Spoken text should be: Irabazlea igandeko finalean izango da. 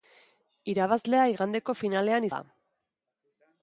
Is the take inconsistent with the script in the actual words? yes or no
yes